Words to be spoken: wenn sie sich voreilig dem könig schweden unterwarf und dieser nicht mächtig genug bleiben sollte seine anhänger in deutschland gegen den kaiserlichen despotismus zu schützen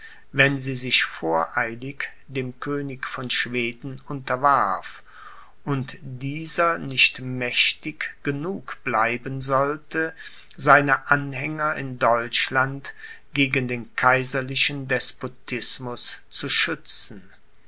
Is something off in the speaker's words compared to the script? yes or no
yes